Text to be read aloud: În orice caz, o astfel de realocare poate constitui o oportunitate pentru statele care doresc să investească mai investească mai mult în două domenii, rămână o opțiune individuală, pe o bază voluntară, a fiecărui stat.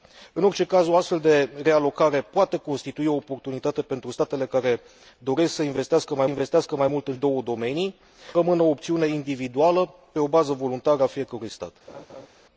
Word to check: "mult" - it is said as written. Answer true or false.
true